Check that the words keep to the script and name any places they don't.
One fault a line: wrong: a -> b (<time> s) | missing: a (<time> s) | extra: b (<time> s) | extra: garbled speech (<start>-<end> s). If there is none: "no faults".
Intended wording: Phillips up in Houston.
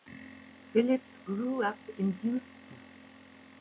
extra: grew (1.2 s)